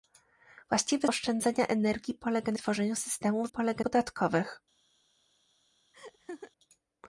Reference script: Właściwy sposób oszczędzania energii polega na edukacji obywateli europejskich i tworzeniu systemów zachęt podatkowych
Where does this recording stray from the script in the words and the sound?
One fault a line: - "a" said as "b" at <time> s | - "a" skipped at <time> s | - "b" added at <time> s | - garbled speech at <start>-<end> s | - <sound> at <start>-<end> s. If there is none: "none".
- "sposób" skipped at 1.1 s
- "edukacji obywateli europejskich" skipped at 2.6 s
- "zachęt" said as "polega" at 3.5 s
- laugh at 5.9-6.5 s